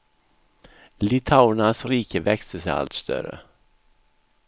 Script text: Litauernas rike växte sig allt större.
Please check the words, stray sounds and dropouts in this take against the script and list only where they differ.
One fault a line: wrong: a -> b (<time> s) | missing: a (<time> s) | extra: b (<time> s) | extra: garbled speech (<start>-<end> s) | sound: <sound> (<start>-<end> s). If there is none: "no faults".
no faults